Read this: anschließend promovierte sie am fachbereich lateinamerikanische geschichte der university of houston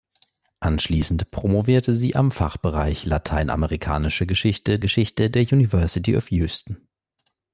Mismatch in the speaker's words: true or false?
true